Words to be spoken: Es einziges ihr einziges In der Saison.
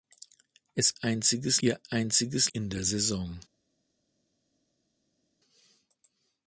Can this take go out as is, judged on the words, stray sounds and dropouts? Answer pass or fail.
pass